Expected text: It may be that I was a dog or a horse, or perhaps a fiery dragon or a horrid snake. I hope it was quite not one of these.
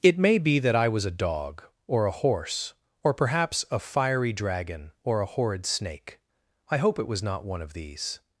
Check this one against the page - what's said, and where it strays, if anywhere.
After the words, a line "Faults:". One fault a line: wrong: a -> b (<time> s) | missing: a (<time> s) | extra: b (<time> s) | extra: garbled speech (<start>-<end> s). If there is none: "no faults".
It may be that I was a dog or a horse, or perhaps a fiery dragon or a horrid snake. I hope it was not one of these.
Faults:
missing: quite (7.2 s)